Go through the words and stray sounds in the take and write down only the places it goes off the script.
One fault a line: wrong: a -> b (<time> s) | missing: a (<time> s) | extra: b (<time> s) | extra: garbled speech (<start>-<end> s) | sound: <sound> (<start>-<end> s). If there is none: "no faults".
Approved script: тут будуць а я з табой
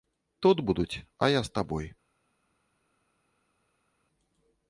no faults